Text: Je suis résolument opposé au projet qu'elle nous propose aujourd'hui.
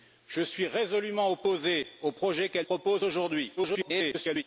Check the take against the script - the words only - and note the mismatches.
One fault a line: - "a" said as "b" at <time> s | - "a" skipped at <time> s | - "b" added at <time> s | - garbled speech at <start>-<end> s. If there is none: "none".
- "nous" skipped at 2.7 s
- garbled speech at 3.6-4.4 s